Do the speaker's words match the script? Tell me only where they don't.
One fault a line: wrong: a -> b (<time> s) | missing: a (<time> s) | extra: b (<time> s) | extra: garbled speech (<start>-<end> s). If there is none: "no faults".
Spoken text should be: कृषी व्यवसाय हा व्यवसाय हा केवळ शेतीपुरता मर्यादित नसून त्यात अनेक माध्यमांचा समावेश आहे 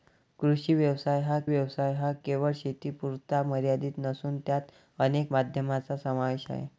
no faults